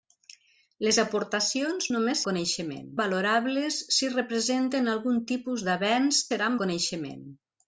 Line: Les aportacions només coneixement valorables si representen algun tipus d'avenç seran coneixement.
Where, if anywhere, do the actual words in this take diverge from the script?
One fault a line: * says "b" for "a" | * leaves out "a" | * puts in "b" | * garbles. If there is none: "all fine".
all fine